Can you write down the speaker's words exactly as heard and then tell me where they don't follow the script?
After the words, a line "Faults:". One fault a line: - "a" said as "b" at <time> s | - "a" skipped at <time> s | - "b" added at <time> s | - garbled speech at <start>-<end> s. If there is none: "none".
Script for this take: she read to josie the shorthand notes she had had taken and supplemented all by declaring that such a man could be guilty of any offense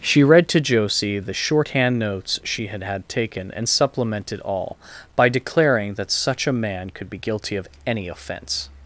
she read to josie the shorthand notes she had had taken and supplemented all by declaring that such a man could be guilty of any offense
Faults:
none